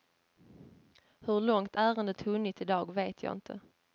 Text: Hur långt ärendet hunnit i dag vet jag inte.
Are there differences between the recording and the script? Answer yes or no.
no